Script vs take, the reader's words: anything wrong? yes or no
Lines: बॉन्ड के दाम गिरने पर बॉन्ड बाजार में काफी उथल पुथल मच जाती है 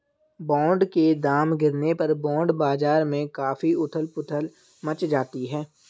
no